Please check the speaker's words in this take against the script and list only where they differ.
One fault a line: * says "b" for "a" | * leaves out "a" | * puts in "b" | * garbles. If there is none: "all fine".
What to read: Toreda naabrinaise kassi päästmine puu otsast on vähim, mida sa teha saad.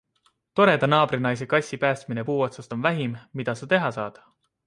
all fine